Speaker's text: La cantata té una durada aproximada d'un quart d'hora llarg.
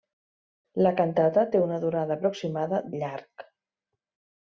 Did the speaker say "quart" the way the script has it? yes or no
no